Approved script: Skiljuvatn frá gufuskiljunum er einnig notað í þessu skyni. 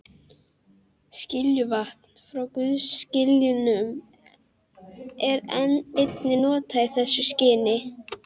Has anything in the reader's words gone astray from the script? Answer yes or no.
no